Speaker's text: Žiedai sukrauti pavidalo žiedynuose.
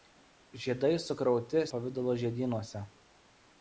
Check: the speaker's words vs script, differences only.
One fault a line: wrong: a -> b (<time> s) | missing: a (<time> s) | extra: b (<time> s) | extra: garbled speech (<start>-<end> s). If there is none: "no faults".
no faults